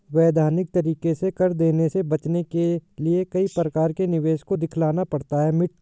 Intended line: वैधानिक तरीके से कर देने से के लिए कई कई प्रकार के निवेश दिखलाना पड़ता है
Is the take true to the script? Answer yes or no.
no